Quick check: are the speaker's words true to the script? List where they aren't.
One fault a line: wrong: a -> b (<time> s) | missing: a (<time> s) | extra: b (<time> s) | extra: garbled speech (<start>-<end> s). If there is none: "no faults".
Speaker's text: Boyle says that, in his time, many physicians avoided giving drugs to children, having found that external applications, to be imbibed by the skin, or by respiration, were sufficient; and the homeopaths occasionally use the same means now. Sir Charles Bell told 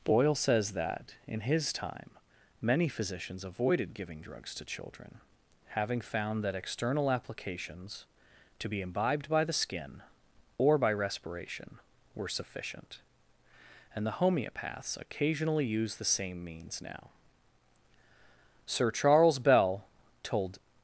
no faults